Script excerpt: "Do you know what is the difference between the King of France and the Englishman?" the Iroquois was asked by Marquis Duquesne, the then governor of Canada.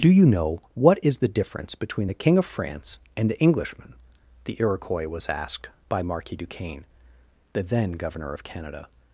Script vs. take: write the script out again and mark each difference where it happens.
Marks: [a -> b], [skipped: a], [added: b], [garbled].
"Do you know what is the difference between the King of France and the Englishman?" the Iroquois was asked by Marquis Duquesne, the then governor of Canada.